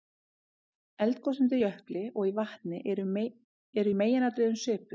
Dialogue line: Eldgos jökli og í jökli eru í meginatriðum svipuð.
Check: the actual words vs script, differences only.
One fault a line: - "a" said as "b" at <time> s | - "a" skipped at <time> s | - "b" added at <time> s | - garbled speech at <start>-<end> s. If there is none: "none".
- "undir" added at 1.4 s
- "jökli" said as "vatni" at 2.4 s